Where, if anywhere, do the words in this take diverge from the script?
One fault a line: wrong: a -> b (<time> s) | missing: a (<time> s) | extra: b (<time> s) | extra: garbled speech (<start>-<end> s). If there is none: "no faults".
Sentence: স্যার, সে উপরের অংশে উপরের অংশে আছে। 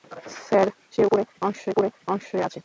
no faults